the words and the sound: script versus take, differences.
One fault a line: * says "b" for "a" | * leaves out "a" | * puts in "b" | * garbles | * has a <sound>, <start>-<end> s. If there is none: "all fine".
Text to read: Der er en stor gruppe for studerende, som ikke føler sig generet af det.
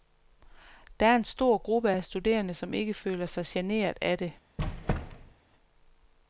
* says "af" for "for"
* has a squeak, 4.6-5.3 s